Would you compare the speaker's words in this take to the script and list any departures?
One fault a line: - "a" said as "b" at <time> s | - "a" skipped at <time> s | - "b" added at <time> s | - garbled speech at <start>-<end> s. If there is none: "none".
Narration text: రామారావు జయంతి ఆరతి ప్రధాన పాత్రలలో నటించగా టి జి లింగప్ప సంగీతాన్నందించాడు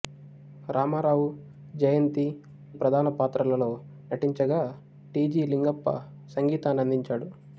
- "ఆరతి" skipped at 2.3 s